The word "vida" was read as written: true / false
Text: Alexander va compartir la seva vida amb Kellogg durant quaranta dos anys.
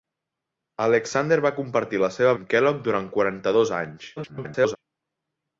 false